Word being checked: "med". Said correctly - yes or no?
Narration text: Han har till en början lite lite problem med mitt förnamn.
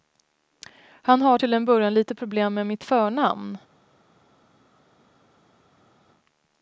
yes